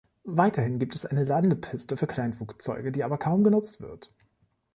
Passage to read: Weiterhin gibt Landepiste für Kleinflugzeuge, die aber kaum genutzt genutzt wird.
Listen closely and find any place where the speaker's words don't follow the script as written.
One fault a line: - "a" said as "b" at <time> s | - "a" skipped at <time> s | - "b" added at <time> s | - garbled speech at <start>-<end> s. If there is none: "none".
- "es eine" added at 0.9 s
- "genutzt" skipped at 3.8 s